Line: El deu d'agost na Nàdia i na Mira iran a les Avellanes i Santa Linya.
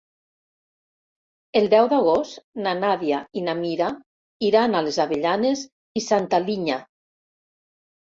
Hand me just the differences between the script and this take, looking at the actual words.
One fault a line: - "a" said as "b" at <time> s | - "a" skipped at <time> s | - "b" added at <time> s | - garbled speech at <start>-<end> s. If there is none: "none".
none